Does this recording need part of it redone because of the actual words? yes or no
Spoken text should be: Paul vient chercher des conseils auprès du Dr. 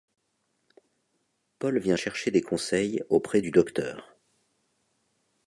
no